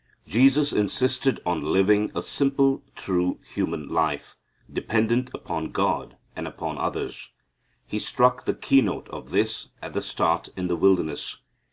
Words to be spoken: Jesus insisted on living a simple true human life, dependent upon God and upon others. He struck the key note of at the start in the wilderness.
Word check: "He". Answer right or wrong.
right